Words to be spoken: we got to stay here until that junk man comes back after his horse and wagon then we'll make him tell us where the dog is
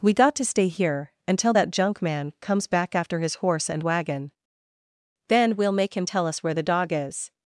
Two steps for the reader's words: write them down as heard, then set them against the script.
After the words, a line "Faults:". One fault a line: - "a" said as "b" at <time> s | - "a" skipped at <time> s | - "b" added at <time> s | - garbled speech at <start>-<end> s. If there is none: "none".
we got to stay here until that junk man comes back after his horse and wagon then we'll make him tell us where the dog is
Faults:
none